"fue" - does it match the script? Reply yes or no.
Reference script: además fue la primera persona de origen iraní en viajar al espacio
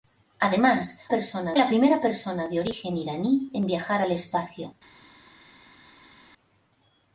no